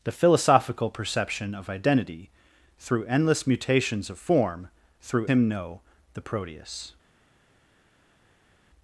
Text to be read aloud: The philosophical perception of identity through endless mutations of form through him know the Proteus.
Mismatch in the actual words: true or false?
false